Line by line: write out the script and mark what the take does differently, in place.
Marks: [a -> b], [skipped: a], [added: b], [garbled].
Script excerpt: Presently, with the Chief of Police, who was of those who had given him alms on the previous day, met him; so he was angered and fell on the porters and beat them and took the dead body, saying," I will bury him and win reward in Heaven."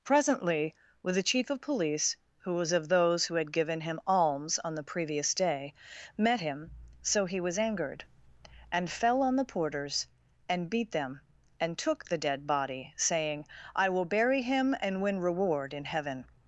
Presently, with the Chief of Police, who was of those who had given him alms on the previous day, met him; so he was angered and fell on the porters and beat them and took the dead body, saying," I will bury him and win reward in Heaven."